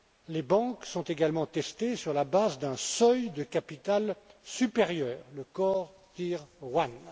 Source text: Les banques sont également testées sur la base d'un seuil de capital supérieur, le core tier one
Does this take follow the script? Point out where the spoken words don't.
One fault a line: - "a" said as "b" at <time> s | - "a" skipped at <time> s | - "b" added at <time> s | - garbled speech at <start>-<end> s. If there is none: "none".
none